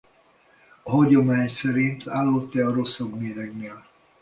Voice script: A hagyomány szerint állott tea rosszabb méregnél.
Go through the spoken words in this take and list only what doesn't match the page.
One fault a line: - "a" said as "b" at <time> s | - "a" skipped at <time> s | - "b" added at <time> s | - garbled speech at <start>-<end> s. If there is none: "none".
none